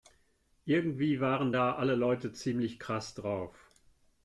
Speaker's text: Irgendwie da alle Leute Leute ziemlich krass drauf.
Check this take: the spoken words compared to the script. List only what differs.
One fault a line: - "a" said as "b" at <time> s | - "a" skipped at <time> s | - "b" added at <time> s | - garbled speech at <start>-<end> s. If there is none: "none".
- "waren" added at 1.2 s
- "Leute" skipped at 2.3 s